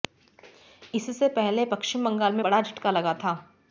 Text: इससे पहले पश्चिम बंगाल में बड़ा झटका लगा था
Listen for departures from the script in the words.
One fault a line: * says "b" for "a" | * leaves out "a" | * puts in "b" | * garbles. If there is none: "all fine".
all fine